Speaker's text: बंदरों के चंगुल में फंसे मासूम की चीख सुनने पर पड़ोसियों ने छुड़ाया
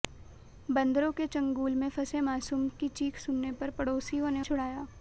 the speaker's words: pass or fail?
pass